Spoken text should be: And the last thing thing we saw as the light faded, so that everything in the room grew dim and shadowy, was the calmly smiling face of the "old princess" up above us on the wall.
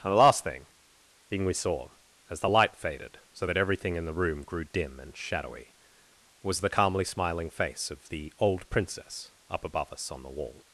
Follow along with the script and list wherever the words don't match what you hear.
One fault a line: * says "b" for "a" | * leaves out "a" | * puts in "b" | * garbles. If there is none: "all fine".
all fine